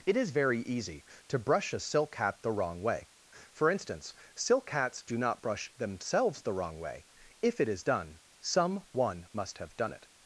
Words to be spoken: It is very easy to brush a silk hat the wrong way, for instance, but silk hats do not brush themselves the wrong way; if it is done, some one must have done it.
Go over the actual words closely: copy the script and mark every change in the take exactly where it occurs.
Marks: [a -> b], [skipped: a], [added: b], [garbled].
It is very easy to brush a silk hat the wrong way, for instance, [skipped: but] silk hats do not brush themselves the wrong way; if it is done, some one must have done it.